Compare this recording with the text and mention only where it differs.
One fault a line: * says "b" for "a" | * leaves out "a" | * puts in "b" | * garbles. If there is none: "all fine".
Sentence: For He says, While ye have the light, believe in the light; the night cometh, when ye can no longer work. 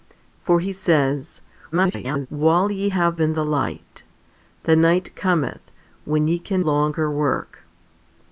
* garbles
* leaves out "the light believe"
* leaves out "no"